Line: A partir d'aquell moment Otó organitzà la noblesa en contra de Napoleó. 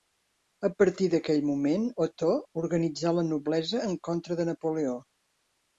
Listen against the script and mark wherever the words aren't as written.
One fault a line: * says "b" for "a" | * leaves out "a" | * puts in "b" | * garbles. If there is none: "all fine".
all fine